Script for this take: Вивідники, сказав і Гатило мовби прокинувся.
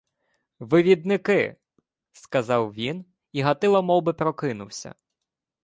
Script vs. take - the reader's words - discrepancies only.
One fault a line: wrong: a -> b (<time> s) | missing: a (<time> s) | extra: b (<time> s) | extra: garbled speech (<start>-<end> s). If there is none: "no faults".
extra: він (2.7 s)